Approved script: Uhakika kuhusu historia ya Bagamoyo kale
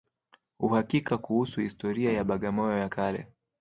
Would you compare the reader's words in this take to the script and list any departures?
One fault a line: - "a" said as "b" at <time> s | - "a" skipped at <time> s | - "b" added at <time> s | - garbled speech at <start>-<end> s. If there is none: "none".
- "ya" added at 2.8 s